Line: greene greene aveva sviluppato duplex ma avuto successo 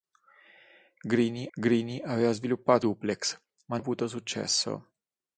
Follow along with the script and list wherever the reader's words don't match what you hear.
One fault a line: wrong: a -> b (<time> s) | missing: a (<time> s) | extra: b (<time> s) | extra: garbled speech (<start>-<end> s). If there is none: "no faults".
no faults